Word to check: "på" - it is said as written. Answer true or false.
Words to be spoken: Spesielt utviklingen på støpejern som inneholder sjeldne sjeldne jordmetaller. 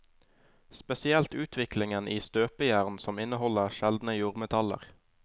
false